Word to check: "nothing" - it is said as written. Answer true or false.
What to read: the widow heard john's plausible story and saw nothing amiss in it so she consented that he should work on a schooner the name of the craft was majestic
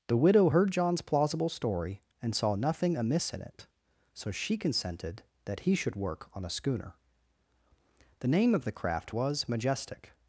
true